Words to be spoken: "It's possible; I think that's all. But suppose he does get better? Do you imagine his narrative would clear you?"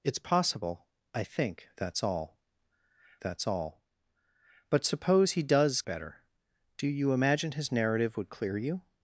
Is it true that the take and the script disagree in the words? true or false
true